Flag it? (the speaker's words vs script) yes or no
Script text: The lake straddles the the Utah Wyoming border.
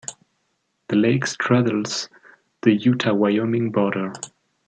yes